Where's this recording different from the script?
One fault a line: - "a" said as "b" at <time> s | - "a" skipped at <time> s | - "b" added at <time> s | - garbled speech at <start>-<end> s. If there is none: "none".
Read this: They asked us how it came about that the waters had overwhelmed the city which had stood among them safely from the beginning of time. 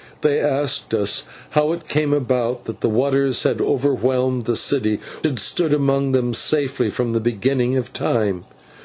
- "which" skipped at 5.0 s